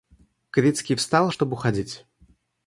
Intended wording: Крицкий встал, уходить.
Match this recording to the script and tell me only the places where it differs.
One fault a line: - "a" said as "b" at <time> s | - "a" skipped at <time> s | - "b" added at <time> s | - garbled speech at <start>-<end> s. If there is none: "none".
- "чтоб" added at 1.3 s